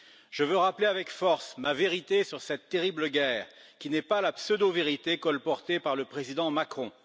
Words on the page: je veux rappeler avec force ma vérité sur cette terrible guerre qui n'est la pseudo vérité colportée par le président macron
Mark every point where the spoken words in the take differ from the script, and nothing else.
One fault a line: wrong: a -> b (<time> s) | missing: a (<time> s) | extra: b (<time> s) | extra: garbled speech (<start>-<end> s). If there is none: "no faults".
extra: pas (4.0 s)